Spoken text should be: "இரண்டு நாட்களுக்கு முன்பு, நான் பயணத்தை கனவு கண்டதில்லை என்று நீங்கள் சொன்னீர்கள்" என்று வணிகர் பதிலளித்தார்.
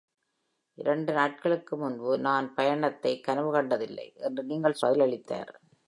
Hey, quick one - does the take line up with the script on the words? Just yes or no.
no